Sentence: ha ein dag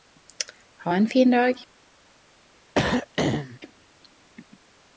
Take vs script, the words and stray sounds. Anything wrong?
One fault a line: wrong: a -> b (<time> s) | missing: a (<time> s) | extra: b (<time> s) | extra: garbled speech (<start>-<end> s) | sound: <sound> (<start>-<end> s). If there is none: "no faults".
extra: fin (1.1 s)
sound: throat clearing (2.7-3.6 s)